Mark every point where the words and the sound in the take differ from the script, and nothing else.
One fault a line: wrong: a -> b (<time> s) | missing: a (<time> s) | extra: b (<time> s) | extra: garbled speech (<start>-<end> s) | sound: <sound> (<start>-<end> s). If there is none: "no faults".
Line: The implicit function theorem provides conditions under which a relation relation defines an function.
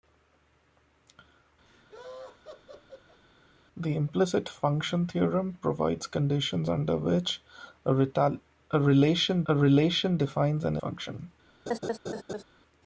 sound: laugh (1.7-3.2 s)
sound: laugh (11.7-12.4 s)